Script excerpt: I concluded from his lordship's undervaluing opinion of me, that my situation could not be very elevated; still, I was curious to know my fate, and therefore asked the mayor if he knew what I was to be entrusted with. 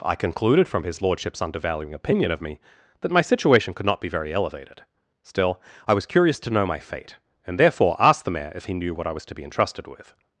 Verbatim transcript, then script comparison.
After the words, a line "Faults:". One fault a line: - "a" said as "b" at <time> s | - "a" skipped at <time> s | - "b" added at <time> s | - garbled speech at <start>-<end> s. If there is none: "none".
I concluded from his lordship's undervaluing opinion of me, that my situation could not be very elevated; still, I was curious to know my fate, and therefore asked the mayor if he knew what I was to be entrusted with.
Faults:
none